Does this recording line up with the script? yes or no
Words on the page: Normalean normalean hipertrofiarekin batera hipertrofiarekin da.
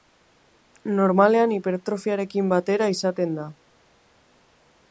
no